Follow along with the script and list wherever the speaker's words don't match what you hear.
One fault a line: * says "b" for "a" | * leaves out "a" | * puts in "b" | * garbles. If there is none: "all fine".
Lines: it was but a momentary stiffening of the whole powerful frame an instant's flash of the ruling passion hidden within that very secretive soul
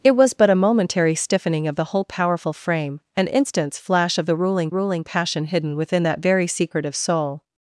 * puts in "ruling"